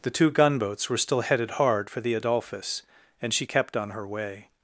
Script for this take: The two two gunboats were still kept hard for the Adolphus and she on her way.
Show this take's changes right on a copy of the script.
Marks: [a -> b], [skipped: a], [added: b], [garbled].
The two [skipped: two] gunboats were still [kept -> headed] hard for the Adolphus and she [added: kept] on her way.